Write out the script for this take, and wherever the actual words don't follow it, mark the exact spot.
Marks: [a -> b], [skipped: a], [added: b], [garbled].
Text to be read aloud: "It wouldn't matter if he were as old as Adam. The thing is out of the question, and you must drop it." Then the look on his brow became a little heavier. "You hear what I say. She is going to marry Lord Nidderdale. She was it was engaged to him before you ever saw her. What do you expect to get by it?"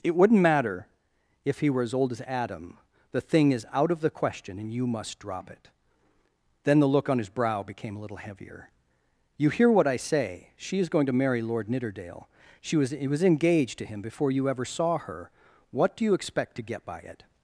"It wouldn't matter if he were as old as Adam. The thing is out of the question, and you must drop it." Then the look on his brow became a little heavier. "You hear what I say. She is going to marry Lord Nidderdale. She was it was engaged to him before you ever saw her. What do you expect to get by it?"